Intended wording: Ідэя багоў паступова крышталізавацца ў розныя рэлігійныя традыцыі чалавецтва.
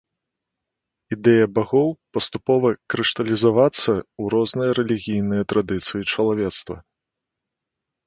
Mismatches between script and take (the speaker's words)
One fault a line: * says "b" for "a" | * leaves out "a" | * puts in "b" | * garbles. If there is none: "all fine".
all fine